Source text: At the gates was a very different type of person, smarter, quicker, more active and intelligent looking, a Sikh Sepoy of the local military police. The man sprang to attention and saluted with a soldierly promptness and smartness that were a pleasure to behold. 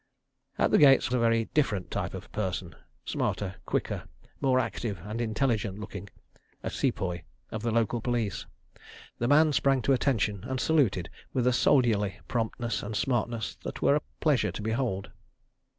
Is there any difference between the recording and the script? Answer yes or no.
yes